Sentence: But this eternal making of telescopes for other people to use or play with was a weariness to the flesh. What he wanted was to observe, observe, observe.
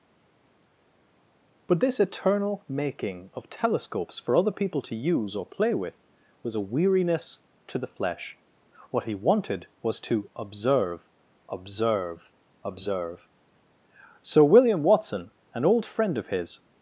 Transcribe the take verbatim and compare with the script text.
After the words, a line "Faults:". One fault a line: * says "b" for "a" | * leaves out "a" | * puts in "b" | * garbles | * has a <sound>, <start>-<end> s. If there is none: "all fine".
But this eternal making of telescopes for other people to use or play with was a weariness to the flesh. What he wanted was to observe, observe, observe. Sir William Watson, an old friend of his
Faults:
* puts in "Sir William Watson an old friend of his"